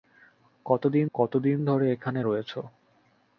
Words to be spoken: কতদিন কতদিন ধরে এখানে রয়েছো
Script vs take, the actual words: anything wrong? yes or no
no